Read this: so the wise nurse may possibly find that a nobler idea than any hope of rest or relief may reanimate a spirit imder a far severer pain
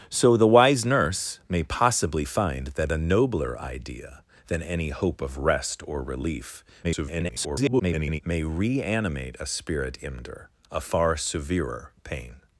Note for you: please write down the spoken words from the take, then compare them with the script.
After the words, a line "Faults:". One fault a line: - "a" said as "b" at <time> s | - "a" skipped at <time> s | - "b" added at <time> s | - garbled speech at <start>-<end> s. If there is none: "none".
so the wise nurse may possibly find that a nobler idea than any hope of rest or relief [garbled] may reanimate a spirit imder a far severer pain
Faults:
- garbled speech at 6.8-8.2 s